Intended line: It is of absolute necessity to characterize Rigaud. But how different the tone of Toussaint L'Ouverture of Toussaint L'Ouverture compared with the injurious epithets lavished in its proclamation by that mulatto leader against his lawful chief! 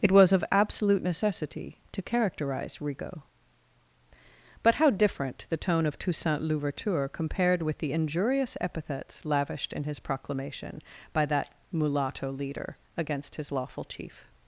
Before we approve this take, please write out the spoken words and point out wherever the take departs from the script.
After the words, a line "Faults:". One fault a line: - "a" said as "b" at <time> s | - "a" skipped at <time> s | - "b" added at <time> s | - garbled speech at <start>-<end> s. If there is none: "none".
It was of absolute necessity to characterize Rigaud. But how different the tone of Toussaint L'Ouverture compared with the injurious epithets lavished in his proclamation by that mulatto leader against his lawful chief!
Faults:
- "is" said as "was" at 0.1 s
- "of Toussaint L'Ouverture" skipped at 7.1 s
- "its" said as "his" at 9.8 s